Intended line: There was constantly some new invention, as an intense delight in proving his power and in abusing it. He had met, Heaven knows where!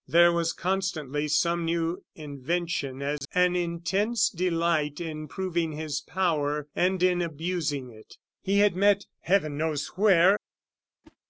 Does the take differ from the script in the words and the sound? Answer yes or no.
yes